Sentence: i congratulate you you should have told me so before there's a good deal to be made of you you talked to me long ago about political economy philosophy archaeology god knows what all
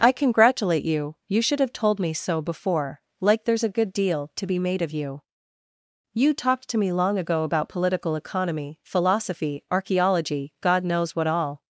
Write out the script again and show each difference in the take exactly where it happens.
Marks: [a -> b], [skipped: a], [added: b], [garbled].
i congratulate you you should have told me so before [added: like] there's a good deal to be made of you you talked to me long ago about political economy philosophy archaeology god knows what all